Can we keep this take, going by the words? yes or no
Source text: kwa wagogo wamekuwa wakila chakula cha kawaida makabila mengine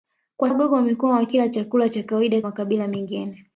yes